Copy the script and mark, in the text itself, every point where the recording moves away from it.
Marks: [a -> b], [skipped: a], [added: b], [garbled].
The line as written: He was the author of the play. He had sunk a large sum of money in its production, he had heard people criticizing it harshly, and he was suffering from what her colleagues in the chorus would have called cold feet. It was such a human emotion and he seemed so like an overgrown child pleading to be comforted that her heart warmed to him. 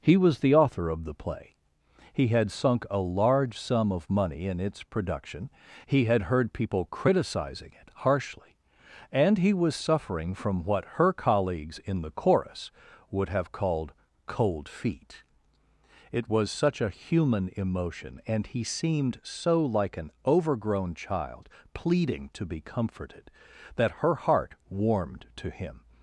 He was the author of the play. He had sunk a large sum of money in its production, he had heard people criticizing it harshly, and he was suffering from what her colleagues in the chorus would have called cold feet. It was such a human emotion and he seemed so like an overgrown child pleading to be comforted that her heart warmed to him.